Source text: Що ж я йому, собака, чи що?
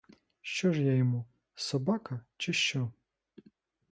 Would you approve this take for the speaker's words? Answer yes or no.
yes